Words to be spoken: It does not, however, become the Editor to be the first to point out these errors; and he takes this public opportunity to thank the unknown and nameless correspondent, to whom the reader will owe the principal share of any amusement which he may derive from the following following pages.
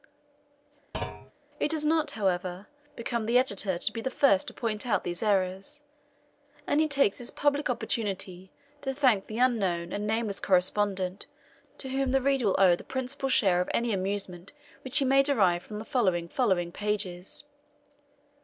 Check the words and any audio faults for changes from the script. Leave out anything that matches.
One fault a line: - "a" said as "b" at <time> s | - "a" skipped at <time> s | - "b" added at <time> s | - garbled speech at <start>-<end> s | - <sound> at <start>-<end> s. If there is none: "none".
- thud at 0.9-1.3 s